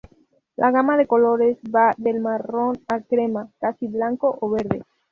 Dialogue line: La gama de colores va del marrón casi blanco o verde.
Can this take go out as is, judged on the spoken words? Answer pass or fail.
fail